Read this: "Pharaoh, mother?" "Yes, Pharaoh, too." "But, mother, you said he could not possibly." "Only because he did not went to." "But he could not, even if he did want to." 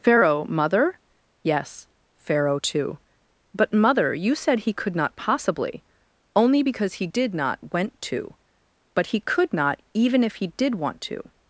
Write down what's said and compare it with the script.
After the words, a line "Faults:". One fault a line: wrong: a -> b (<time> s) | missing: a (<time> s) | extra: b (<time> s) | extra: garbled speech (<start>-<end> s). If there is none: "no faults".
"Pharaoh, mother?" "Yes, Pharaoh, too." "But, mother, you said he could not possibly." "Only because he did not went to." "But he could not, even if he did want to."
Faults:
no faults